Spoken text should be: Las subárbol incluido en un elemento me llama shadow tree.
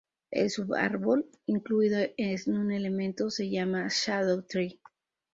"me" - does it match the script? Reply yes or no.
no